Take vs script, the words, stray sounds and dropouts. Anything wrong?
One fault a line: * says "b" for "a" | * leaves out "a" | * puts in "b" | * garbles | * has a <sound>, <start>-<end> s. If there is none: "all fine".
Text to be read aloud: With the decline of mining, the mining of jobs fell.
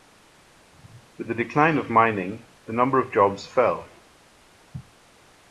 * says "number" for "mining"